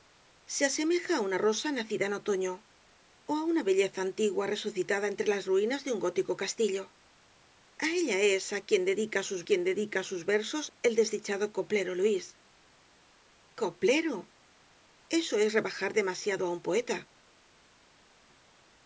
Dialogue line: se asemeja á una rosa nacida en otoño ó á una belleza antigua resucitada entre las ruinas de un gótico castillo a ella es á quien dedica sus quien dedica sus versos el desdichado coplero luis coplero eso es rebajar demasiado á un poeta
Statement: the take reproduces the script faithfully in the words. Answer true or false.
true